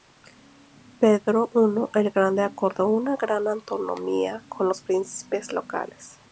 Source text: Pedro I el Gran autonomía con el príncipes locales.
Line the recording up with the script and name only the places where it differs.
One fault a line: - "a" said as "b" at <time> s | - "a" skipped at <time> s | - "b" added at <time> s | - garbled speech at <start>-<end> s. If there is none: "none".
- "Grande acordó una" added at 2.1 s
- "el" said as "los" at 4.7 s